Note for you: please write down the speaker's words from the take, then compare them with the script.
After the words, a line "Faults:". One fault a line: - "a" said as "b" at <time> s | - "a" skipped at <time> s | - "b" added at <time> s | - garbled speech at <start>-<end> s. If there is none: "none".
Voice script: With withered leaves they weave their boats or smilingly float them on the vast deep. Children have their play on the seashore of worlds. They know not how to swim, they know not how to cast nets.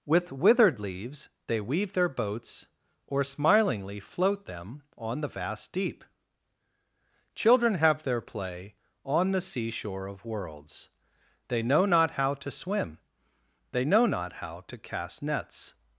With withered leaves they weave their boats or smilingly float them on the vast deep. Children have their play on the seashore of worlds. They know not how to swim, they know not how to cast nets.
Faults:
none